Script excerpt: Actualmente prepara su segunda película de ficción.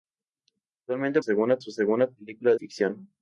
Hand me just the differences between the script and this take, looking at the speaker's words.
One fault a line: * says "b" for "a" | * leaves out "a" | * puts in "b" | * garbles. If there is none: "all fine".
* says "segunda" for "prepara"
* leaves out "de"